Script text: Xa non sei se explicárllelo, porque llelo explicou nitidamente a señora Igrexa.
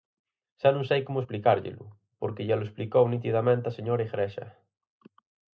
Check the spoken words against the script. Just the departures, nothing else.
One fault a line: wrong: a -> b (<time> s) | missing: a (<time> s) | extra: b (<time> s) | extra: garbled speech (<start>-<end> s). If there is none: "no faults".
wrong: se -> como (1.1 s)